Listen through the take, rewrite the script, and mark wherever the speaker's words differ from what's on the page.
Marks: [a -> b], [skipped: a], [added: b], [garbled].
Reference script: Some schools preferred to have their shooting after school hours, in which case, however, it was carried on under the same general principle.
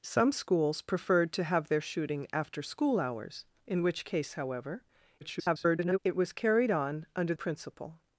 Some schools preferred to have their shooting after school hours, in which case, however, [garbled] it was carried on under [skipped: the same general] principle.